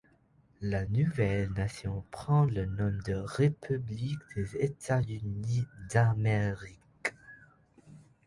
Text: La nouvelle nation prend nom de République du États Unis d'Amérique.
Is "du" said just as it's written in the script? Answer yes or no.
no